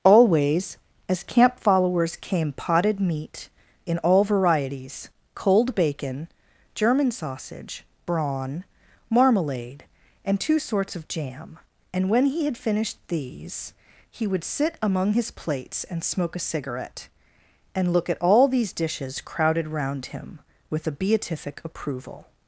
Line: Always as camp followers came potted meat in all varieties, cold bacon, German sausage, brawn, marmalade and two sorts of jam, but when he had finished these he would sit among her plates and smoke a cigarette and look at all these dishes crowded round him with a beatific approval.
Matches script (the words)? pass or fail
fail